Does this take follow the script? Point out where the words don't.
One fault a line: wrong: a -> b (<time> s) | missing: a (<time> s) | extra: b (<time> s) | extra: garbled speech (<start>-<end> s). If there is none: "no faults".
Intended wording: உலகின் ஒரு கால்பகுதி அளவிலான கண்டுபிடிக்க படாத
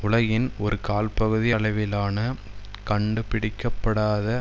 no faults